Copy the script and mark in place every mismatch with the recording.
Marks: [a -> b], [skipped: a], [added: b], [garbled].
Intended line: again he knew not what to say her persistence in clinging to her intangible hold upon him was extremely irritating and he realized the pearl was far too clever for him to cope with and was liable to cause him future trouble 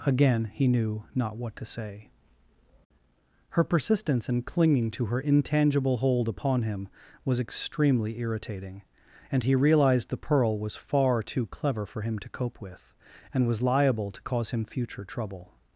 again he knew not what to say her persistence in clinging to her intangible hold upon him was extremely irritating and he realized the pearl was far too clever for him to cope with and was liable to cause him future trouble